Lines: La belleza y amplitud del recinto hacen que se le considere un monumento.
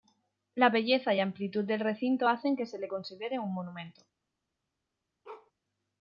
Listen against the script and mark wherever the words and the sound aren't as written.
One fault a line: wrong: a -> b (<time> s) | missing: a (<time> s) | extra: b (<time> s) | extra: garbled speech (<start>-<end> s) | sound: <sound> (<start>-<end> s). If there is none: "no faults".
sound: bark (5.2-5.5 s)